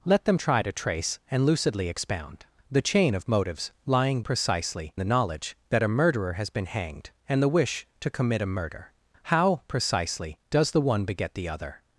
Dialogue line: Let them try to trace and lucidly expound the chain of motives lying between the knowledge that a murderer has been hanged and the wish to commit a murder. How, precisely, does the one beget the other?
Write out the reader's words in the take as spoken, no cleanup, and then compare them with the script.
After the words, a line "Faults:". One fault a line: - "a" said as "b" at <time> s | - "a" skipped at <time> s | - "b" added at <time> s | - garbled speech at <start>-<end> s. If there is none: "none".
Let them try to trace and lucidly expound the chain of motives lying precisely the knowledge that a murderer has been hanged and the wish to commit a murder. How, precisely, does the one beget the other?
Faults:
- "between" said as "precisely" at 4.2 s